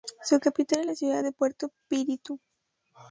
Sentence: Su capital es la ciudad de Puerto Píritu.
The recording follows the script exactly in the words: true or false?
true